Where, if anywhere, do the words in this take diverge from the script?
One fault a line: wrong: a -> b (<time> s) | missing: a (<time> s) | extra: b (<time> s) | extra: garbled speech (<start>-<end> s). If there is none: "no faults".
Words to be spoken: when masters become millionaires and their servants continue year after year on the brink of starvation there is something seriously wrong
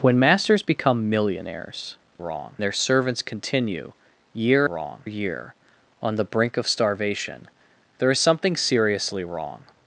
wrong: and -> wrong (2.2 s)
wrong: after -> wrong (4.6 s)